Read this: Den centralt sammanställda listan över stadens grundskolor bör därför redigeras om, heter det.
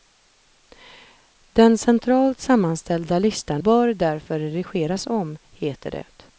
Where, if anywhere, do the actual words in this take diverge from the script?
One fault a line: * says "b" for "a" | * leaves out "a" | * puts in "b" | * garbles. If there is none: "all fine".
* leaves out "över stadens grundskolor"